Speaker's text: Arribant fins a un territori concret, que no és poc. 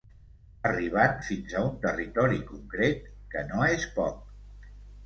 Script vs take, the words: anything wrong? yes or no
no